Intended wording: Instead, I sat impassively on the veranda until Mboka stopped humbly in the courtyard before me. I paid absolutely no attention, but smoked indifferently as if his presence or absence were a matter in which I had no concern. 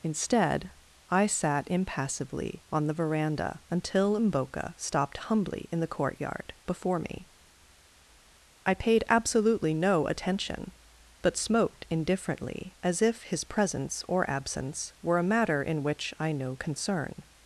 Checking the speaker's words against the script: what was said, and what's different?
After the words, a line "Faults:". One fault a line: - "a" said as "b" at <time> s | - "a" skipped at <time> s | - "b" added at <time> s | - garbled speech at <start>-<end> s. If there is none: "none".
Instead, I sat impassively on the veranda until Mboka stopped humbly in the courtyard before me. I paid absolutely no attention, but smoked indifferently as if his presence or absence were a matter in which I no concern.
Faults:
- "had" skipped at 16.3 s